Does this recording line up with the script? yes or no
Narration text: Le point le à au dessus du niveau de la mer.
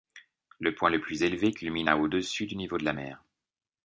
no